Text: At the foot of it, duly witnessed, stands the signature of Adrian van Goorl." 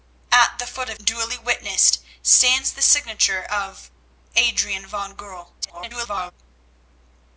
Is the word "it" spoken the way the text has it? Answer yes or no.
no